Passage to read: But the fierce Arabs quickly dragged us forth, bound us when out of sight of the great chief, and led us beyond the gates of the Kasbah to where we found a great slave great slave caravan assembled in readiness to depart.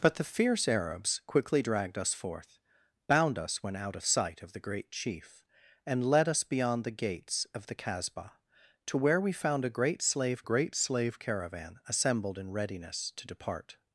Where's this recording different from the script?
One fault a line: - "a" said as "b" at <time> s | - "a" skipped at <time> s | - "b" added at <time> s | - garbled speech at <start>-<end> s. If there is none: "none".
none